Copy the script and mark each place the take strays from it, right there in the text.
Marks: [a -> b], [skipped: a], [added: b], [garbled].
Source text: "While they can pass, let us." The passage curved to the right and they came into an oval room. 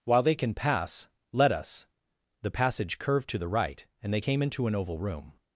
"While they can pass, let us." The passage curved to the right and they came into an oval room.